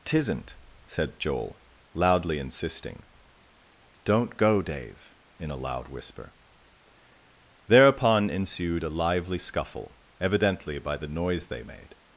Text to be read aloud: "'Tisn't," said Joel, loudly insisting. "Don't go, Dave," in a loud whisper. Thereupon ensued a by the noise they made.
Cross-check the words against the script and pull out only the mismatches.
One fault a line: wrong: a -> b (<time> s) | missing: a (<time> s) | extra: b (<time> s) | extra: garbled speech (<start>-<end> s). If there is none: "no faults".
extra: lively scuffle evidently (8.9 s)